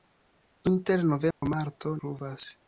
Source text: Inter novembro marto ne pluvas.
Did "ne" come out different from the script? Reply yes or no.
yes